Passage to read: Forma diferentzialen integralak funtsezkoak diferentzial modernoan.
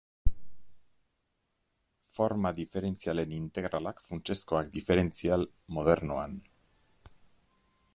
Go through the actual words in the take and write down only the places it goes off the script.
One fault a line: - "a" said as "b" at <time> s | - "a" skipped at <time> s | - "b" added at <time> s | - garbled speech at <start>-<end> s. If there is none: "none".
none